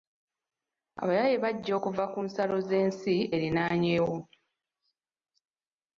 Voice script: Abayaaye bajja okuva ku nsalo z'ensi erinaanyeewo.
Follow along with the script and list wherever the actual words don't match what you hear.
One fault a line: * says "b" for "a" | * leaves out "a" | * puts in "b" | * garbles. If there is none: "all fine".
all fine